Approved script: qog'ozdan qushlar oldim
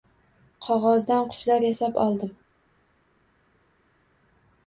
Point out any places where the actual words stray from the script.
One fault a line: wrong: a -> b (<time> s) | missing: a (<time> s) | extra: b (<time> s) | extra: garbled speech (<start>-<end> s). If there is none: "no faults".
extra: yasab (1.7 s)